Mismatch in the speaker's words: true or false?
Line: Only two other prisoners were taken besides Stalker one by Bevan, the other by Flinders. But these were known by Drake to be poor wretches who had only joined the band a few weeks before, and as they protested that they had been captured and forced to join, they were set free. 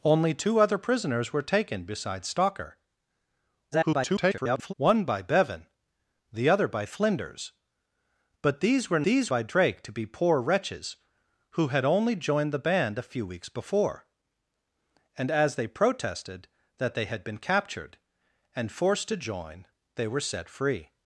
true